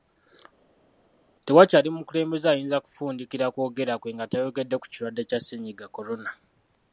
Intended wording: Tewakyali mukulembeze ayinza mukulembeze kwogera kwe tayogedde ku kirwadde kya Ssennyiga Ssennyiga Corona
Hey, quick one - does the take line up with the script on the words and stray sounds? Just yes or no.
no